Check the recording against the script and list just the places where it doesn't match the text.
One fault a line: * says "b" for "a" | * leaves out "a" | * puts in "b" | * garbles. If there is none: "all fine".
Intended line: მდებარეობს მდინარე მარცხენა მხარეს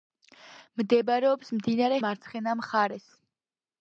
all fine